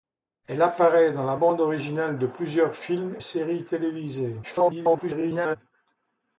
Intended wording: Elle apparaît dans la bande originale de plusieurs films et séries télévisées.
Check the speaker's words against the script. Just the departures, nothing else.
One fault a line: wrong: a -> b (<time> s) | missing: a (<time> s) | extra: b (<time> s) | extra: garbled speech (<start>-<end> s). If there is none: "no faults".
missing: et (3.2 s)
extra: garbled speech (4.4-5.6 s)